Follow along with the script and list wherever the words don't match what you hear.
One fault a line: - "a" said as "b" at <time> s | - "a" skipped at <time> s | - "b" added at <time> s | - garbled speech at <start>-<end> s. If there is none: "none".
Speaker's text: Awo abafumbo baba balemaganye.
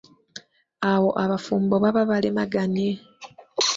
none